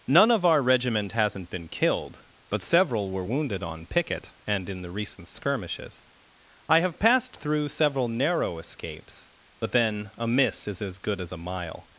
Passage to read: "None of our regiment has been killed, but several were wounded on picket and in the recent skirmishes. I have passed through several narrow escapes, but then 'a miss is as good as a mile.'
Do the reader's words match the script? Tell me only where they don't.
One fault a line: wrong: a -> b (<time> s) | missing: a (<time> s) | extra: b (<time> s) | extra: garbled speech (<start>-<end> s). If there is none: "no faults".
wrong: has -> hasn't (1.1 s)